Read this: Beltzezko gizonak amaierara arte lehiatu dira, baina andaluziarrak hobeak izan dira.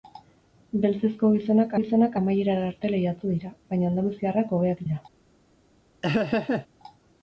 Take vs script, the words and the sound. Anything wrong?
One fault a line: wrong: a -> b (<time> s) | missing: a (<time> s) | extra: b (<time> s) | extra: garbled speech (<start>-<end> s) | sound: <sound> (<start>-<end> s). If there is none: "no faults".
extra: gizonak (1.8 s)
missing: izan (4.8 s)
sound: laugh (6.0-6.7 s)